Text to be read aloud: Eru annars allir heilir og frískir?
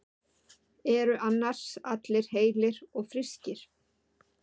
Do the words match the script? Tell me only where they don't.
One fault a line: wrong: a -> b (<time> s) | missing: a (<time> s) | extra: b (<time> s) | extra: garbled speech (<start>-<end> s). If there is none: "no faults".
no faults